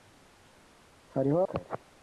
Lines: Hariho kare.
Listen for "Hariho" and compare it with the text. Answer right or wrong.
right